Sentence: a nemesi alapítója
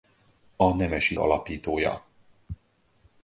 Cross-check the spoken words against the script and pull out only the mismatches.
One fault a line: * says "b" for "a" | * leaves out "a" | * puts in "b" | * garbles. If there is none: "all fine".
all fine